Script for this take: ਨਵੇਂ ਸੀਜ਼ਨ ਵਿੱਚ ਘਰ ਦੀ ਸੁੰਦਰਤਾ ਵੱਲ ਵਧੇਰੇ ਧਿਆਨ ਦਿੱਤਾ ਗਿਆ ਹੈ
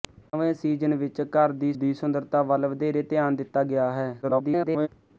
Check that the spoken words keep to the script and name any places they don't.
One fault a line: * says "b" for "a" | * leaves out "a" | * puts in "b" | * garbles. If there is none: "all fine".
* puts in "ਦੀ"
* garbles